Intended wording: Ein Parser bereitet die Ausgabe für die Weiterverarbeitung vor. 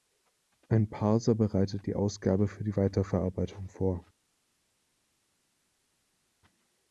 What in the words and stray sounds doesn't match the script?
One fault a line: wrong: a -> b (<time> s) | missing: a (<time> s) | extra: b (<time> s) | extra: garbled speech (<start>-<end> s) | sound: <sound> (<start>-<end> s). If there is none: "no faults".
no faults